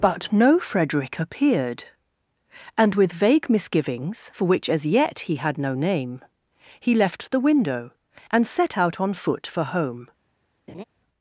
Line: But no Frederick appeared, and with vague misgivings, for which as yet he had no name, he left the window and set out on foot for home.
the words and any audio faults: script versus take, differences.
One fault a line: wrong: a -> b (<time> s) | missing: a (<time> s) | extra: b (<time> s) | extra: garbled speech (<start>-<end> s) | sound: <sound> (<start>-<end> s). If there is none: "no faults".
sound: laugh (10.7-10.8 s)